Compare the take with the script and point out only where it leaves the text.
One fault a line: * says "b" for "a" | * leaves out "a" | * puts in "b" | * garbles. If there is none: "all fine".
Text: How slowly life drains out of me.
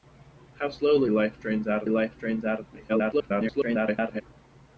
* puts in "life drains out"
* garbles